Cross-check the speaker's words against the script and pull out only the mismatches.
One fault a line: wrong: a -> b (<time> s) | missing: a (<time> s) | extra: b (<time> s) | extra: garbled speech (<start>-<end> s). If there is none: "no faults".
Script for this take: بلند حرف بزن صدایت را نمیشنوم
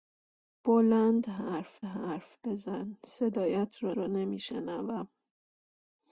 extra: حرف (1.8 s)
extra: را (4.0 s)